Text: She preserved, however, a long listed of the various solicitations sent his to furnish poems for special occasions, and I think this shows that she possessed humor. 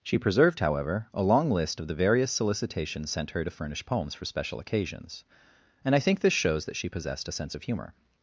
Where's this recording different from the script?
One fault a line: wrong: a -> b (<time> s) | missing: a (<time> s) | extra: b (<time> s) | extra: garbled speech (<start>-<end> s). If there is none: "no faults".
wrong: listed -> list (1.5 s)
wrong: his -> her (3.3 s)
extra: a sense of (7.3 s)